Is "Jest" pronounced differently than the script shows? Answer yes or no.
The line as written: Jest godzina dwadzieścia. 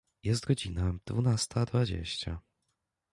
no